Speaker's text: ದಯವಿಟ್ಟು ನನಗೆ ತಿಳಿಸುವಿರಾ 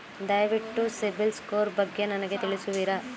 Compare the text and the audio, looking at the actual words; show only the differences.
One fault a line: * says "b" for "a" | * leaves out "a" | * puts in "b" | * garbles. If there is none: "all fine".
* puts in "ಸಿಬಿಲ್ ಸ್ಕೋರ್ ಬಗ್ಗೆ"